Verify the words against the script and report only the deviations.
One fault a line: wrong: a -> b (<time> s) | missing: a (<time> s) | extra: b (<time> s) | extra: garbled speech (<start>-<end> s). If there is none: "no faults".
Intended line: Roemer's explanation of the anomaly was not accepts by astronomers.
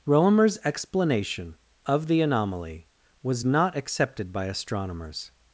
wrong: accepts -> accepted (3.8 s)